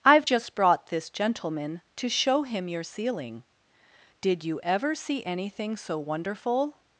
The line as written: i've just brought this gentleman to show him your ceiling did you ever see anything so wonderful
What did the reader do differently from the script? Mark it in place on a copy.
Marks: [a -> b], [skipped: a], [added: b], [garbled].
i've just brought this gentleman to show him your ceiling did you ever see anything so wonderful